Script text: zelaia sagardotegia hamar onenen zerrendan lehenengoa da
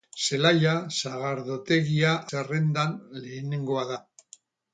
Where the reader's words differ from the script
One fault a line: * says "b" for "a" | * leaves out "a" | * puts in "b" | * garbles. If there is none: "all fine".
* leaves out "hamar onenen"